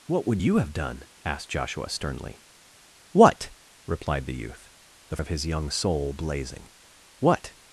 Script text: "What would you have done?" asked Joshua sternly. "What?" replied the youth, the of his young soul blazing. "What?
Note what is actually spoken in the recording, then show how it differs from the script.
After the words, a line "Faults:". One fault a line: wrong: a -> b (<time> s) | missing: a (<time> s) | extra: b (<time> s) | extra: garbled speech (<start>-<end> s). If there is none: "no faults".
"What would you have done?" asked Joshua sternly. "What?" replied the youth, the of his young soul blazing. "What?
Faults:
no faults